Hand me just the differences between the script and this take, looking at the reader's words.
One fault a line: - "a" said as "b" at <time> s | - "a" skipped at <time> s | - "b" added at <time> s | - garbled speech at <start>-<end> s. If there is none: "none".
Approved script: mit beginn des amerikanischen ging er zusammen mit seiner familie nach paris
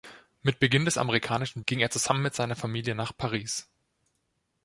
none